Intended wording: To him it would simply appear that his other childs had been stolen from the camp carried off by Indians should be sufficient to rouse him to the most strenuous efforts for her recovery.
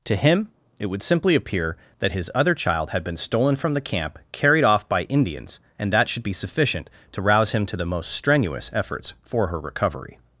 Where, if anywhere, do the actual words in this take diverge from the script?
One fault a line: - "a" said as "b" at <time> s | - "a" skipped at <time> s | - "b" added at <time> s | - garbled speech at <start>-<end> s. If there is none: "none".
- "childs" said as "child" at 2.5 s
- "and that" added at 5.8 s